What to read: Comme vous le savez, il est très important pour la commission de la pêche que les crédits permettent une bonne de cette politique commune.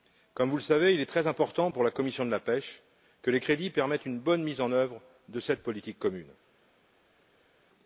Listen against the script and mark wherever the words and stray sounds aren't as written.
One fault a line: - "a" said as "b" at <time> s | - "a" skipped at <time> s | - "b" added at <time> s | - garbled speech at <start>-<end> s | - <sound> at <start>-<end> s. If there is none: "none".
- "mise en œuvre" added at 4.4 s